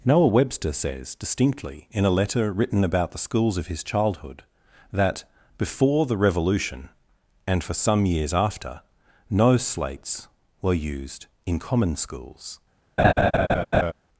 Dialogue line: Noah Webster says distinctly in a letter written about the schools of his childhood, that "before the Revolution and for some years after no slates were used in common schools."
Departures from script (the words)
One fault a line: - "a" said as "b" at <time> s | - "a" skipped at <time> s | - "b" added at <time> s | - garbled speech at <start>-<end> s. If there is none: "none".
none